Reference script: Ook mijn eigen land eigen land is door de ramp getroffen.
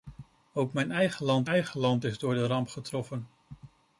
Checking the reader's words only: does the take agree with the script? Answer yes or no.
yes